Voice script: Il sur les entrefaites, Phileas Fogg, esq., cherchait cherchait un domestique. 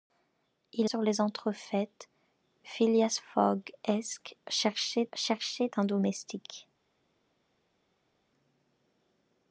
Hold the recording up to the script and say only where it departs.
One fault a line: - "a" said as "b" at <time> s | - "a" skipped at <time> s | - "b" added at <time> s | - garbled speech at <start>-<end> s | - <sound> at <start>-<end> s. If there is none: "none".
none